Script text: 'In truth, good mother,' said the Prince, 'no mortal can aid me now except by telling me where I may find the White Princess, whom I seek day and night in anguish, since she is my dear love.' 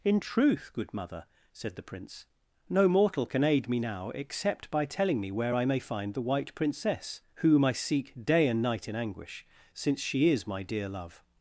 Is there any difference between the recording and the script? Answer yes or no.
no